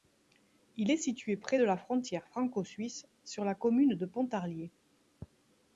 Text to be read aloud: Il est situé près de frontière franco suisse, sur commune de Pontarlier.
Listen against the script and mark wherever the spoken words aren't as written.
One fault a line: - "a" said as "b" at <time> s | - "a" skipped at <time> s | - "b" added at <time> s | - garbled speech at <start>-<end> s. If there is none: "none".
- "la" added at 1.6 s
- "la" added at 3.4 s